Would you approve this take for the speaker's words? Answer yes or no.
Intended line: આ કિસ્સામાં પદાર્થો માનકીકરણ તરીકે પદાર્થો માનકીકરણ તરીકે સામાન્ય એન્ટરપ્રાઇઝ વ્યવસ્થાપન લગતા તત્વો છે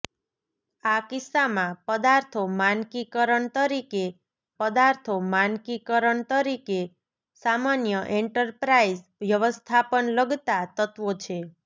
yes